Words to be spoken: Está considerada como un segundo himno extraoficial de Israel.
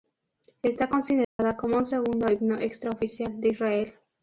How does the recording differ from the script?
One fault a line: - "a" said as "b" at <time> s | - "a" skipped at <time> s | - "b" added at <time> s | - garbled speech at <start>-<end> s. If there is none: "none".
none